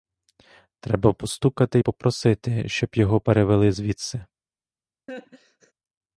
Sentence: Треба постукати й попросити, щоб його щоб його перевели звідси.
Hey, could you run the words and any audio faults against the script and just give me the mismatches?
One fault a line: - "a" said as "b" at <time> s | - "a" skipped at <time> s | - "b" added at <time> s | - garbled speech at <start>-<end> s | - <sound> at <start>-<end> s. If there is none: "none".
- "щоб його" skipped at 3.2 s
- laugh at 5.1-5.7 s